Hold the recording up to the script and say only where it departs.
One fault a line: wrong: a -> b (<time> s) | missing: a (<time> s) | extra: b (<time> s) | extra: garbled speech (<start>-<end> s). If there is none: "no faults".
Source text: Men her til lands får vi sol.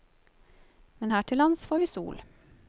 no faults